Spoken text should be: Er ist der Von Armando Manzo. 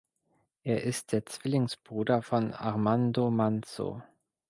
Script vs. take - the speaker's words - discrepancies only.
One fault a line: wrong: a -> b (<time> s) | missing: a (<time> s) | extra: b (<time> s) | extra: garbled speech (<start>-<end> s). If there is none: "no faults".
extra: Zwillingsbruder (1.3 s)